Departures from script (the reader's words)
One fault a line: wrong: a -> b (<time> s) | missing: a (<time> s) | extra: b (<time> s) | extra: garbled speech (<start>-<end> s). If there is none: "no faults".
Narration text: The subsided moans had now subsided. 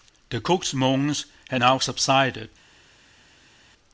wrong: subsided -> cook's (0.4 s)